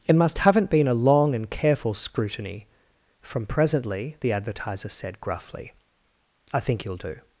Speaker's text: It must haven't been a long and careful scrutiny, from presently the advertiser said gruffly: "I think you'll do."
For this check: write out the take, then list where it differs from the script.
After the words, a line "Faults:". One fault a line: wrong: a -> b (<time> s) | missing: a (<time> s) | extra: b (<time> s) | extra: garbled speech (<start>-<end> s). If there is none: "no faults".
It must haven't been a long and careful scrutiny, from presently the advertiser said gruffly: "I think you'll do."
Faults:
no faults